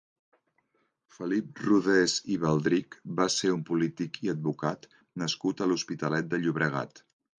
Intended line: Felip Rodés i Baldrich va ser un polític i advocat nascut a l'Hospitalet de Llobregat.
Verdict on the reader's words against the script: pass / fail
pass